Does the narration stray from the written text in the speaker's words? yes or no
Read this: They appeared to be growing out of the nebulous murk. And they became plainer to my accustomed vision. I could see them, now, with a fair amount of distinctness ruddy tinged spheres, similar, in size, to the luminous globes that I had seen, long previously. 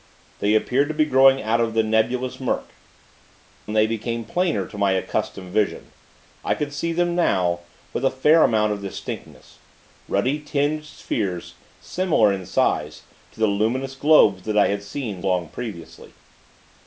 no